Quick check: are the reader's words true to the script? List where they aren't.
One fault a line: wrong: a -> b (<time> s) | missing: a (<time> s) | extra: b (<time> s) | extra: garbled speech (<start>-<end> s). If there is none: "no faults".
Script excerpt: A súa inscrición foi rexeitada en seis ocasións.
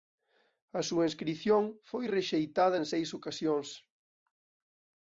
no faults